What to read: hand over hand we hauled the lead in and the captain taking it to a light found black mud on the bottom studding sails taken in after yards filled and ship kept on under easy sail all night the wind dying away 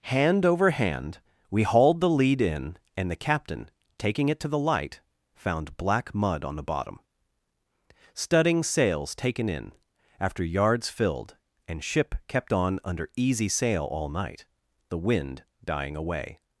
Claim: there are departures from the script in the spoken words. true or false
true